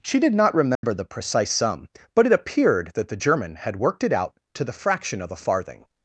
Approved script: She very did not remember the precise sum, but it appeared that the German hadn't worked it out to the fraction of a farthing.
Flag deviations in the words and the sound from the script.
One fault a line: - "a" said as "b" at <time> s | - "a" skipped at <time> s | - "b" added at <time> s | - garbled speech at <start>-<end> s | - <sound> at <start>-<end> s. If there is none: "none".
- "very" skipped at 0.2 s
- dropout at 0.7-0.8 s
- "hadn't" said as "had" at 3.6 s